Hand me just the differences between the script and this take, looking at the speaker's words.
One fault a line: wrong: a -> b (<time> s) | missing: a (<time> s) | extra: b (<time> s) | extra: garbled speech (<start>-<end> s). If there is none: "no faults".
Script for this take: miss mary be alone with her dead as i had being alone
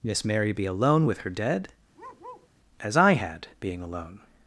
no faults